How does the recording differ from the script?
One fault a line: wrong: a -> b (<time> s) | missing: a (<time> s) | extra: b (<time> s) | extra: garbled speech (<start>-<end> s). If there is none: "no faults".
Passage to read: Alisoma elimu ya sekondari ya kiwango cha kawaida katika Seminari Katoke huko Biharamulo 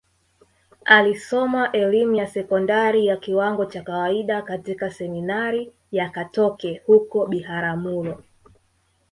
extra: ya (5.9 s)